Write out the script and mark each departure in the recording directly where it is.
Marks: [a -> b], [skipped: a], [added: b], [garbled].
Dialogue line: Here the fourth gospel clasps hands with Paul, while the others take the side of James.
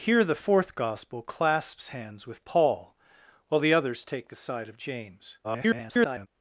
Here the fourth gospel clasps hands with Paul, while the others take the side of James. [garbled]